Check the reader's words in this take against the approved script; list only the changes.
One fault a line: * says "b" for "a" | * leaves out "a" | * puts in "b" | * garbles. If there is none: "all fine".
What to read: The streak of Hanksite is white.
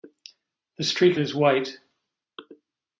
* leaves out "of Hanksite"